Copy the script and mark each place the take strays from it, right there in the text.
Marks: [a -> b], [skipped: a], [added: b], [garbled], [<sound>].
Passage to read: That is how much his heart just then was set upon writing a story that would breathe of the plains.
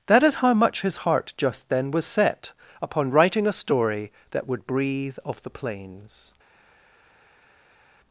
That is how much his heart just then was set upon writing a story that would breathe of the plains.